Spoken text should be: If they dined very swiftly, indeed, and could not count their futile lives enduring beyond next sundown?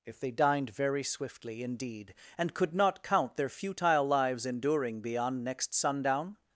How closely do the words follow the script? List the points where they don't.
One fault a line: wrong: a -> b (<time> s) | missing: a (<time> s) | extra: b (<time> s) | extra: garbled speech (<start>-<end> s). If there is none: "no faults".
no faults